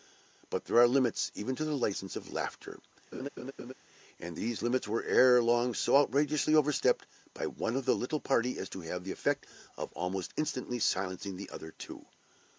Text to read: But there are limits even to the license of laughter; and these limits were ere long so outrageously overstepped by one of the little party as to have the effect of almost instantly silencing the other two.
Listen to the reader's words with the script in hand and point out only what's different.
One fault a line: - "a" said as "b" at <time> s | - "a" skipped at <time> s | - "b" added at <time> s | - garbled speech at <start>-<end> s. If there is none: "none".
none